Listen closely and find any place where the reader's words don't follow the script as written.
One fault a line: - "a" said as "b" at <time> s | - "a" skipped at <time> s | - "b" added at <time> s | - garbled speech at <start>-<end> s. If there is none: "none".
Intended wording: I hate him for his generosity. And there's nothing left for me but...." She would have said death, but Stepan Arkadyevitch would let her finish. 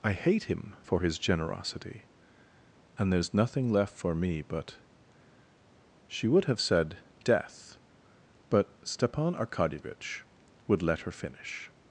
none